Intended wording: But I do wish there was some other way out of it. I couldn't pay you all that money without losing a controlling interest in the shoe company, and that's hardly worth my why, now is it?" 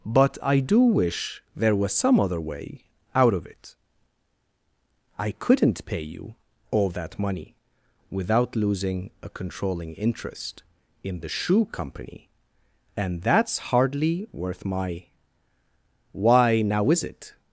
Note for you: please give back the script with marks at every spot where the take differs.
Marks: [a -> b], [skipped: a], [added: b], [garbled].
But I do wish there was some other way out of it. I couldn't pay you all that money without losing a controlling interest in the shoe company, and that's hardly worth my why, now is it?"